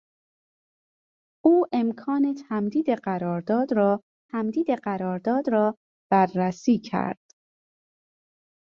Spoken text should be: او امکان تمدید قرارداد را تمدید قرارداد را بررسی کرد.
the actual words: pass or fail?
pass